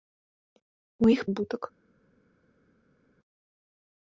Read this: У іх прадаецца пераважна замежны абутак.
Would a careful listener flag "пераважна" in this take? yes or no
yes